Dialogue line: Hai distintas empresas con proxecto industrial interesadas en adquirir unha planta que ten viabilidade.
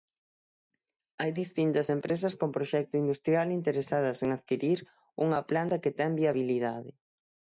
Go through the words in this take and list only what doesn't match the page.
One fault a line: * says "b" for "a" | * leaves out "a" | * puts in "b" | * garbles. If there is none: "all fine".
all fine